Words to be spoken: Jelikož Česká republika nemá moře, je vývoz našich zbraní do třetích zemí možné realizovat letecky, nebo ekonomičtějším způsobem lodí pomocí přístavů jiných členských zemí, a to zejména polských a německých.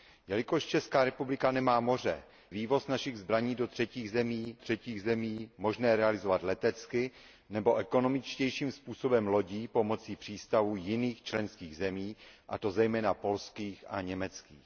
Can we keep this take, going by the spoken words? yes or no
no